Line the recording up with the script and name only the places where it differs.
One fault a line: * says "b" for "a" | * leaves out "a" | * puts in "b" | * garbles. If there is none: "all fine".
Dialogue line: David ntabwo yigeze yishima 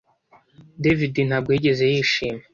all fine